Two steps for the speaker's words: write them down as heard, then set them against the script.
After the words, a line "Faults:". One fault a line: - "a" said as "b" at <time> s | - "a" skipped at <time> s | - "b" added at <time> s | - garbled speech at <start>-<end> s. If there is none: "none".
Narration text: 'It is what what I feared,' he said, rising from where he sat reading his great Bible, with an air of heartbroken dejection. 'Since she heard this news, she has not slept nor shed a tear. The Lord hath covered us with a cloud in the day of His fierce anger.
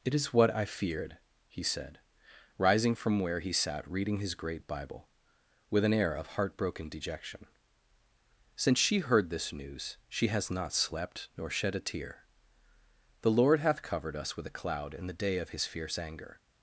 'It is what I feared,' he said, rising from where he sat reading his great Bible, with an air of heartbroken dejection. 'Since she heard this news, she has not slept nor shed a tear. The Lord hath covered us with a cloud in the day of His fierce anger.
Faults:
- "what" skipped at 0.5 s